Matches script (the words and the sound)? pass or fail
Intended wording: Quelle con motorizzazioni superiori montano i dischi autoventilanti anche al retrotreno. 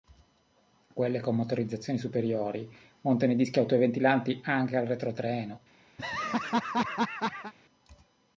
fail